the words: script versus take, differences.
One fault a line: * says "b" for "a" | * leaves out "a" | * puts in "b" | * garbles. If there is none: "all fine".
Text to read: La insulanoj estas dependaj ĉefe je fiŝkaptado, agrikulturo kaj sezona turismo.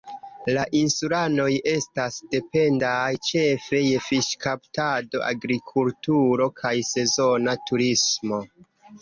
all fine